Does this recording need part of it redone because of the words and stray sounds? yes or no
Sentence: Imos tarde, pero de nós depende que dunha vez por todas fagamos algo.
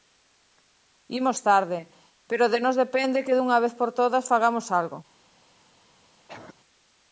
yes